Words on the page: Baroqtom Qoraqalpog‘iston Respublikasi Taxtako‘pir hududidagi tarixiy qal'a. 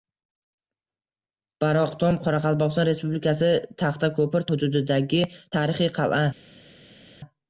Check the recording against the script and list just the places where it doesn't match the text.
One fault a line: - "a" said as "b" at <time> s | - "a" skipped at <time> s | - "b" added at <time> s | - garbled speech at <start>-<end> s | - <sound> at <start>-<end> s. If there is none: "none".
none